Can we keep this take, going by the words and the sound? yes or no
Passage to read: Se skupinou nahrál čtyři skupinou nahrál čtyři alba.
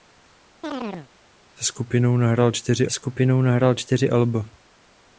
no